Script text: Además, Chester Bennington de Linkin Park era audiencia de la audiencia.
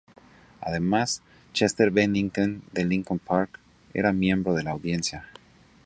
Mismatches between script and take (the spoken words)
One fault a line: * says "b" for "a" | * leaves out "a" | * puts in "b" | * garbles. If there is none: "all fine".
* says "miembro" for "audiencia"